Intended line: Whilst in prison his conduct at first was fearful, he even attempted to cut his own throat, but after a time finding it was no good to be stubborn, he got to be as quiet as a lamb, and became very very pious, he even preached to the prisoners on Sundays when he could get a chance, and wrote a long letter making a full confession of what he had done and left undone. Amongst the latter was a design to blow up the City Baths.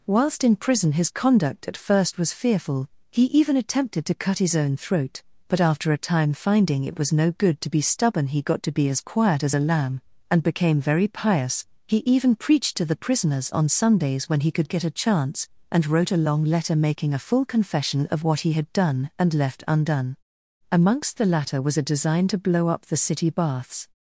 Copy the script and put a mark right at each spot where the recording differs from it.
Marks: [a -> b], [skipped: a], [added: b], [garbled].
Whilst in prison his conduct at first was fearful, he even attempted to cut his own throat, but after a time finding it was no good to be stubborn, he got to be as quiet as a lamb, and became very [skipped: very] pious, he even preached to the prisoners on Sundays when he could get a chance, and wrote a long letter making a full confession of what he had done and left undone. Amongst the latter was a design to blow up the City Baths.